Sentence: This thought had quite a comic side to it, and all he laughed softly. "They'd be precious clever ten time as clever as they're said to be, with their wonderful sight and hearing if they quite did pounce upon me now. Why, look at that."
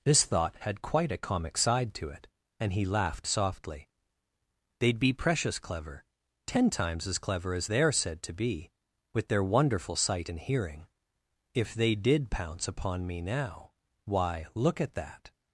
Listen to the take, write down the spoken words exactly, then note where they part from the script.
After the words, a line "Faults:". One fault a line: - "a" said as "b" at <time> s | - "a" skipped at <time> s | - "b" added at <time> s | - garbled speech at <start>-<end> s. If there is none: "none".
This thought had quite a comic side to it, and he laughed softly. "They'd be precious clever ten times as clever as they're said to be, with their wonderful sight and hearing if they did pounce upon me now. Why, look at that."
Faults:
- "all" skipped at 2.7 s
- "time" said as "times" at 6.7 s
- "quite" skipped at 11.9 s